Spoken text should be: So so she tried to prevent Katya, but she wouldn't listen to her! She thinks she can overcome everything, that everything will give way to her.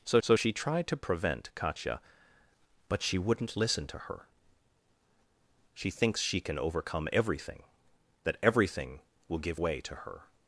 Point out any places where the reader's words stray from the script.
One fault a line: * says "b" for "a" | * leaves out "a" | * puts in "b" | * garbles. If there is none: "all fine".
all fine